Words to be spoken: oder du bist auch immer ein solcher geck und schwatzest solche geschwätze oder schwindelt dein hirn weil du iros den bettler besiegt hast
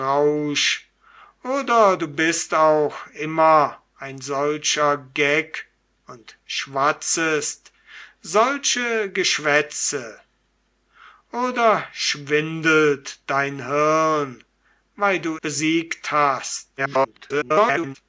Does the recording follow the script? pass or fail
fail